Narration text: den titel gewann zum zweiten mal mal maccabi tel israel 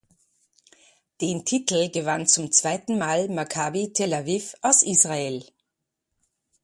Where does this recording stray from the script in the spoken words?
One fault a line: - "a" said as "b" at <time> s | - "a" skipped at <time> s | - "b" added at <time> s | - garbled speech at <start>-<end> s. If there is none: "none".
- "mal" skipped at 3.3 s
- "aviv aus" added at 4.1 s